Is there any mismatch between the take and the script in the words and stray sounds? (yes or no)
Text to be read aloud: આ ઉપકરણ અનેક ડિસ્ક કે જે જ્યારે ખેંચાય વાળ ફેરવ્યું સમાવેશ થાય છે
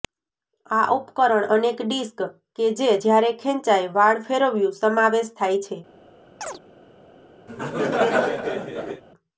yes